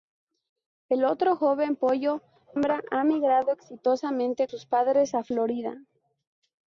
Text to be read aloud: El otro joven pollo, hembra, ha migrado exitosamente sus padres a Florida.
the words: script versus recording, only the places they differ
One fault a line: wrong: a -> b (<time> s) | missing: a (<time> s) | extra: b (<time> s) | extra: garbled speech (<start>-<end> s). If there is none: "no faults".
no faults